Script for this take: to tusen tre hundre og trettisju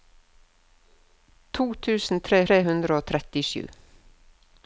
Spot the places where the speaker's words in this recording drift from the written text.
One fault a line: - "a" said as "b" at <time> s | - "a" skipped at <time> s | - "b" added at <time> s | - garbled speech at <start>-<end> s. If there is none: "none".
- "tre" added at 2.5 s